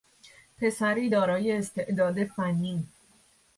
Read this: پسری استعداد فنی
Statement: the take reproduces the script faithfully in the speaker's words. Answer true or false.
false